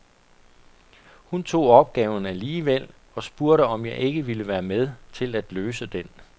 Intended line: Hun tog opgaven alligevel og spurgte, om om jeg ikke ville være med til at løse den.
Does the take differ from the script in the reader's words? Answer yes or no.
yes